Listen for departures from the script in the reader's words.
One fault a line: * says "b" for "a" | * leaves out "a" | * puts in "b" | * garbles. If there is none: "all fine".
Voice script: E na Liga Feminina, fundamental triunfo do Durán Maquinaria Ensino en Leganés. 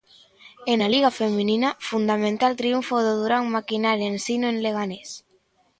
all fine